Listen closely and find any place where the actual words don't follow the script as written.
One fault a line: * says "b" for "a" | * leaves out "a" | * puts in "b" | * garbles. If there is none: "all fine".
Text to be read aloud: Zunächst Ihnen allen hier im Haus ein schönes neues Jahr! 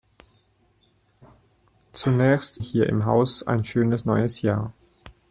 * leaves out "Ihnen allen"